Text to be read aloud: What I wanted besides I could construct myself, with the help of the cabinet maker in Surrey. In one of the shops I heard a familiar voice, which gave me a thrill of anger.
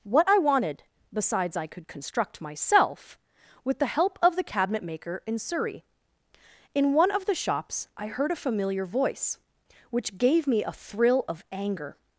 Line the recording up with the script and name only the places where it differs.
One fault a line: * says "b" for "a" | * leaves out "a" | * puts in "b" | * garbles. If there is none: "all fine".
all fine